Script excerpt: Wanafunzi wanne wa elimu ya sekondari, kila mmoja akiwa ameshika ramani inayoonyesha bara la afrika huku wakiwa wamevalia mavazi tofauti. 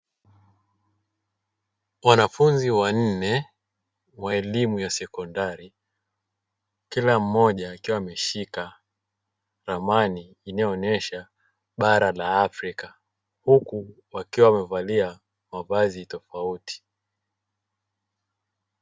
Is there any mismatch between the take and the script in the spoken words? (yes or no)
no